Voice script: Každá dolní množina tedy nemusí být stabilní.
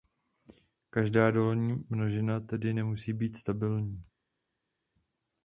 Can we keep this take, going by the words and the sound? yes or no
yes